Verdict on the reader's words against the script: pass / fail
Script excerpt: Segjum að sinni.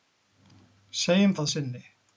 pass